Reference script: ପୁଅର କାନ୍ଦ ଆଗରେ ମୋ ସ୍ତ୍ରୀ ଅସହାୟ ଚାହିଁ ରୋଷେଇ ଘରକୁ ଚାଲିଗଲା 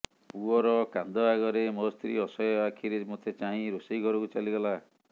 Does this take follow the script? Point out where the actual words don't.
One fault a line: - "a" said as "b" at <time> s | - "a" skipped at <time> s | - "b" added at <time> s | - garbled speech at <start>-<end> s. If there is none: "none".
- "ଆଖିରେ ମୋତେ" added at 2.6 s